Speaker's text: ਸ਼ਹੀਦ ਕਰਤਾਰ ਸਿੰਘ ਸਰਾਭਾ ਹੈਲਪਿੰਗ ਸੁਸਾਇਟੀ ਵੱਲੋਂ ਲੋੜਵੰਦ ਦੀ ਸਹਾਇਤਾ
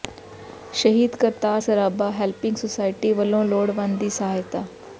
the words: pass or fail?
fail